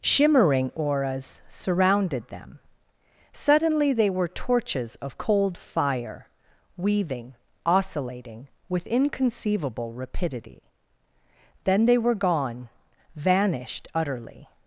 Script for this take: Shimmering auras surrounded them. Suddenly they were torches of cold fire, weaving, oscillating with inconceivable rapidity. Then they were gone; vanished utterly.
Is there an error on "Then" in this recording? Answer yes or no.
no